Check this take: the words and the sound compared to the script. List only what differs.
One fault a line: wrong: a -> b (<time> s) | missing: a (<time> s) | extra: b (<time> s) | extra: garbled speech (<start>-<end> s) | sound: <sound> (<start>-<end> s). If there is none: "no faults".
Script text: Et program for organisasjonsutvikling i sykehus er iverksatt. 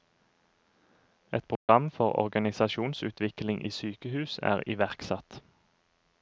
sound: dropout (1.6-1.7 s)